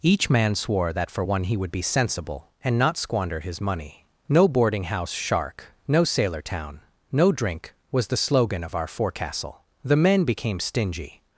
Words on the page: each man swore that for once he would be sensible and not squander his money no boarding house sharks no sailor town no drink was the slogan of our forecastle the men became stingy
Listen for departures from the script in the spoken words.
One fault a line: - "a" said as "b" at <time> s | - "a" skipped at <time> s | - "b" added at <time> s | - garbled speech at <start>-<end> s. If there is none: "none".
- "once" said as "one" at 1.2 s
- "sharks" said as "shark" at 5.1 s